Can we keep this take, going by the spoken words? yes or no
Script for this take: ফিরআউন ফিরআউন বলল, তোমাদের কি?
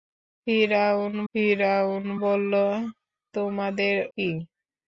yes